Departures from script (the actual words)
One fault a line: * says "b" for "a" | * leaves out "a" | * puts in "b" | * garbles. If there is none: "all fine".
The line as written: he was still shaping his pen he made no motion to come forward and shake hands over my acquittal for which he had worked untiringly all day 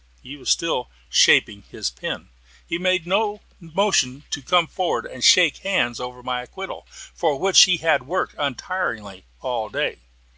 all fine